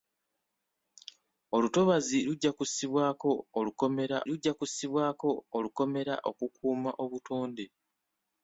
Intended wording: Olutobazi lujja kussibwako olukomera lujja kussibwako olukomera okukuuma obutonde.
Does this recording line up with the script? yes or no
yes